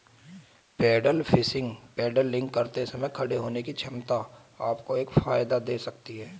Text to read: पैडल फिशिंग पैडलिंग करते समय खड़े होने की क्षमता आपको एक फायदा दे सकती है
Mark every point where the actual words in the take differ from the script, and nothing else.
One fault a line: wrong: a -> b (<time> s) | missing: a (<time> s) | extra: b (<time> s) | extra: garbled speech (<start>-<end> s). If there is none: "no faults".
no faults